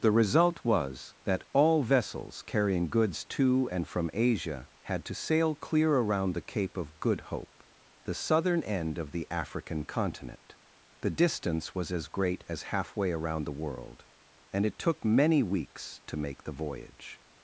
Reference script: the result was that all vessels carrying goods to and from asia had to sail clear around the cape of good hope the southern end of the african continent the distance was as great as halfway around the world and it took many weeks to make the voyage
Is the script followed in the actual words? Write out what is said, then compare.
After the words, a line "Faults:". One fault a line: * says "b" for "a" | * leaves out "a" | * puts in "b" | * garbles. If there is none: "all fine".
the result was that all vessels carrying goods to and from asia had to sail clear around the cape of good hope the southern end of the african continent the distance was as great as halfway around the world and it took many weeks to make the voyage
Faults:
all fine